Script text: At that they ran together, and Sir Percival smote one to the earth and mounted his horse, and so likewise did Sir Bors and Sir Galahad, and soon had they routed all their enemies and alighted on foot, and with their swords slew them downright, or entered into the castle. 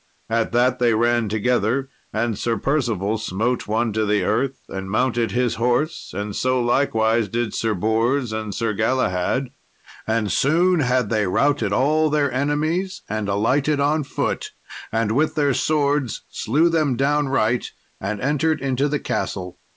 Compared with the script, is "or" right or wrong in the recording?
wrong